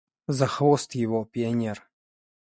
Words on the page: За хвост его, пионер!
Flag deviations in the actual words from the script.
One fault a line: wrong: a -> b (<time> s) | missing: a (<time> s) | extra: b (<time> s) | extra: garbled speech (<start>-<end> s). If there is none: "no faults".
no faults